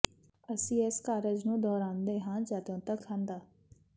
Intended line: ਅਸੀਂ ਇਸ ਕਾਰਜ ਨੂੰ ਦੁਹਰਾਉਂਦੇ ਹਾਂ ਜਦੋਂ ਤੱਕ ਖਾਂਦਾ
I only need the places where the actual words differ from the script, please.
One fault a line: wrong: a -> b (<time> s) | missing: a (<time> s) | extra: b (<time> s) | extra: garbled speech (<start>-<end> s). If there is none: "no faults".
no faults